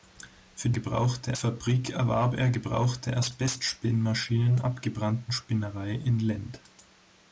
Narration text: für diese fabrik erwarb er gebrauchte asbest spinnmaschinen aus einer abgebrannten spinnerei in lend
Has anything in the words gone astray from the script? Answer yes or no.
yes